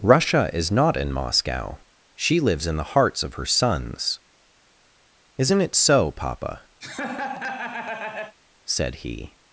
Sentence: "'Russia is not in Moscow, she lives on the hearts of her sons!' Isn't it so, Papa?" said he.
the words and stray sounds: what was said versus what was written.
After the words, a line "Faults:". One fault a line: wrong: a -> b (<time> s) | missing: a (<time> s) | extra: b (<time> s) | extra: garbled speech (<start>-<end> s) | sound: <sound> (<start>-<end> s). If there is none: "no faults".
"'Russia is not in Moscow, she lives in the hearts of her sons!' Isn't it so, Papa?" said he.
Faults:
wrong: on -> in (2.6 s)
sound: laugh (6.8-8.4 s)